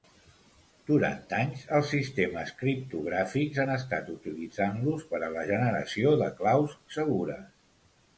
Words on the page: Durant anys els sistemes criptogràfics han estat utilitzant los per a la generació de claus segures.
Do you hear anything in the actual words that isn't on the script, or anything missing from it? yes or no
no